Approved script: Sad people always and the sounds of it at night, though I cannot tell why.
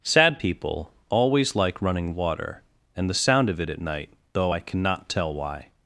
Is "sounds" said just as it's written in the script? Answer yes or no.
no